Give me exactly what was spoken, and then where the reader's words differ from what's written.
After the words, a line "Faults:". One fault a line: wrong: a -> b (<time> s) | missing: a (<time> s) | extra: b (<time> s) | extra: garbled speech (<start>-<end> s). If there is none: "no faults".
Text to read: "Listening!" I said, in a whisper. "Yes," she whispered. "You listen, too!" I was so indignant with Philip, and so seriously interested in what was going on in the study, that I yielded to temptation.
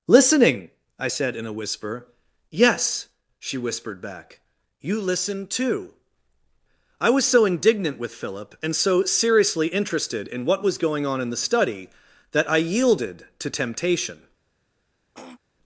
"Listening!" I said, in a whisper. "Yes," she whispered back. "You listen, too!" I was so indignant with Philip, and so seriously interested in what was going on in the study, that I yielded to temptation.
Faults:
extra: back (4.0 s)